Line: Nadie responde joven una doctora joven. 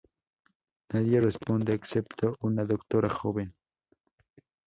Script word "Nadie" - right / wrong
right